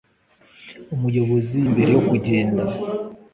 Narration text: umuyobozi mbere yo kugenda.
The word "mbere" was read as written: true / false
true